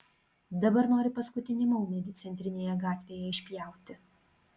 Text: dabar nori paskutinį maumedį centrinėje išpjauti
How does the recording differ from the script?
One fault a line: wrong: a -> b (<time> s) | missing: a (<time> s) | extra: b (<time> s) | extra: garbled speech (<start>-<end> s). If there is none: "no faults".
extra: gatvėje (2.9 s)